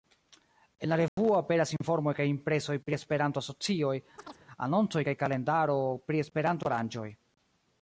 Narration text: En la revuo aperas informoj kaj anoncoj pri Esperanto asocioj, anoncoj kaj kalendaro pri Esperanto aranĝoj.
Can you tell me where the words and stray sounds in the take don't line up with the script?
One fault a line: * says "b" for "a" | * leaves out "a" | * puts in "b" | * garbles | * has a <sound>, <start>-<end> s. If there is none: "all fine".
* has a dropout, 1.1-1.2 s
* says "impresoj" for "anoncoj"
* has a chirp, 4.2-4.5 s